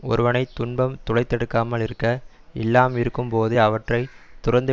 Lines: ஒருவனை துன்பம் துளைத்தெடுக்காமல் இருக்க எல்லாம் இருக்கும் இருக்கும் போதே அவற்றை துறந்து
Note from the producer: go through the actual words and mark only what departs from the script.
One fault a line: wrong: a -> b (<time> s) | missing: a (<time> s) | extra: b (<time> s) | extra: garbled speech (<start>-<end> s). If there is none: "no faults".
missing: இருக்கும் (3.3 s)